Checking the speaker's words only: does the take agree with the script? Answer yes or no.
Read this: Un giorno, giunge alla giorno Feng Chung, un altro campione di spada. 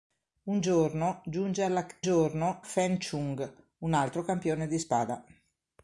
yes